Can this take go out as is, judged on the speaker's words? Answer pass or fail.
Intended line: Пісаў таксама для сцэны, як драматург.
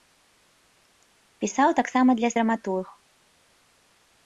fail